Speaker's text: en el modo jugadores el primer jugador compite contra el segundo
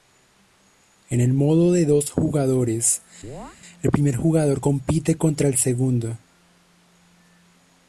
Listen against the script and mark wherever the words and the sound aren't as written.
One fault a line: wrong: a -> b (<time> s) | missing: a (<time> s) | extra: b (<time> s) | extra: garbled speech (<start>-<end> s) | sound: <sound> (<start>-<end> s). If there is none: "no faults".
extra: de dos (1.7 s)
sound: chirp (3.2-3.6 s)